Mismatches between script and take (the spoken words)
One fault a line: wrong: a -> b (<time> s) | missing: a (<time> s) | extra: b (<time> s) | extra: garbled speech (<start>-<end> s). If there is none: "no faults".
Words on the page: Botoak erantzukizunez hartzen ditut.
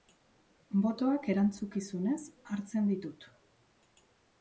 no faults